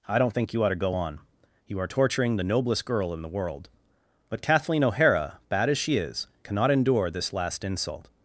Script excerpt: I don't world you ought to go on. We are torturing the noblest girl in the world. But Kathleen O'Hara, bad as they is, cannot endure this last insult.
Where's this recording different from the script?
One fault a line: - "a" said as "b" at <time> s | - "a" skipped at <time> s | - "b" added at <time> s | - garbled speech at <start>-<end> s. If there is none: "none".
- "world" said as "think" at 0.3 s
- "We" said as "You" at 1.7 s
- "they" said as "she" at 5.8 s